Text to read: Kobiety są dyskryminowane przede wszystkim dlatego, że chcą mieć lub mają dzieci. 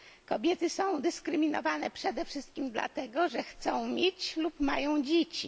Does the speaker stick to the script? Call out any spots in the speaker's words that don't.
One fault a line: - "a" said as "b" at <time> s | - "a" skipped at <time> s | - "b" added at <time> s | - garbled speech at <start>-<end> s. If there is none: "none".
none